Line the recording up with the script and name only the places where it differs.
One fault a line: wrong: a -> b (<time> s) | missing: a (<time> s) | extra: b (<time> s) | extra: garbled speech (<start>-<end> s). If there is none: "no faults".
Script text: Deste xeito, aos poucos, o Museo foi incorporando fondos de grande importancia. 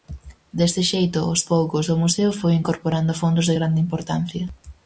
no faults